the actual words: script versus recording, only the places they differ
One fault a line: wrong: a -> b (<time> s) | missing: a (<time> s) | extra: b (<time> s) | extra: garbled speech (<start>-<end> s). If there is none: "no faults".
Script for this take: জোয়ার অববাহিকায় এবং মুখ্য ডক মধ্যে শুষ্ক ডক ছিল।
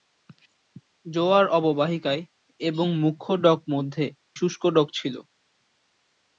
no faults